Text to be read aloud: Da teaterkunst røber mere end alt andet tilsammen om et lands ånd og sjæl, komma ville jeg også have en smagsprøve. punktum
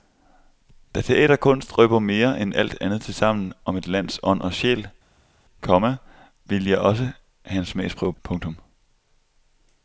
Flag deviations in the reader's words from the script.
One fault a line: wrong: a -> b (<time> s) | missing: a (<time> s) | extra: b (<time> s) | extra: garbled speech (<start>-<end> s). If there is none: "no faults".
no faults